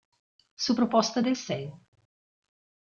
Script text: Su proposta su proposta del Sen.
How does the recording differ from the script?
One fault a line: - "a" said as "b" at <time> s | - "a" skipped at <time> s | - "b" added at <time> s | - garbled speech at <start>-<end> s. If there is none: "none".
- "su proposta" skipped at 1.2 s